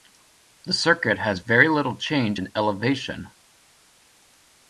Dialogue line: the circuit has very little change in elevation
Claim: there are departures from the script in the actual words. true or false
false